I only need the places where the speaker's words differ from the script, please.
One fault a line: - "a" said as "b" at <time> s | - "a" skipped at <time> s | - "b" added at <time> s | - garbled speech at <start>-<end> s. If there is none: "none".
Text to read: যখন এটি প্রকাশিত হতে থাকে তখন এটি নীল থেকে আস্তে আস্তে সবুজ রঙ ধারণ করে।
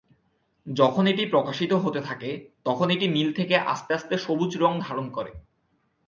none